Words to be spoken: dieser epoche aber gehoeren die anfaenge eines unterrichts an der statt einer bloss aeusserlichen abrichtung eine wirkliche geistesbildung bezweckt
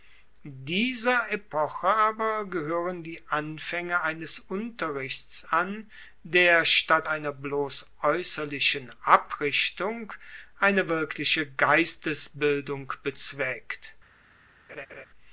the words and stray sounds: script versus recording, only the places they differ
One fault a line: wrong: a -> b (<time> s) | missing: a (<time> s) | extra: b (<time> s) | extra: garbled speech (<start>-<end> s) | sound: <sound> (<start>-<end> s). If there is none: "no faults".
sound: laugh (14.7-15.1 s)